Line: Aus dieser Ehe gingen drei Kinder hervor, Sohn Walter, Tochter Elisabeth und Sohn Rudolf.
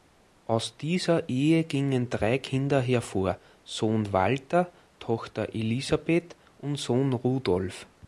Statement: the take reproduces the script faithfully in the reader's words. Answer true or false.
true